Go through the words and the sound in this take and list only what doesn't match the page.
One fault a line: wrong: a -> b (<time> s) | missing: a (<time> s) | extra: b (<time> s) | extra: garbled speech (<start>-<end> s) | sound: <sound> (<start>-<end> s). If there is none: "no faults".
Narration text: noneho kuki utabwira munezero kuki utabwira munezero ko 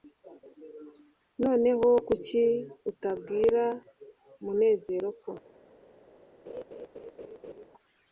missing: kuki utabwira munezero (5.1 s)
sound: laugh (6.5-7.7 s)